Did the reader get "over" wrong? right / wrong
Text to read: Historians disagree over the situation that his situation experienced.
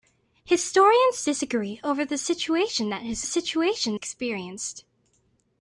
right